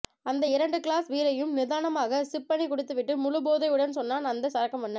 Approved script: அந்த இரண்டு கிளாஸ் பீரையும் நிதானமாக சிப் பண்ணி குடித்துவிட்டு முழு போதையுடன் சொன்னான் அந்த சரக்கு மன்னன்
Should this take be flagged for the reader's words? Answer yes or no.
no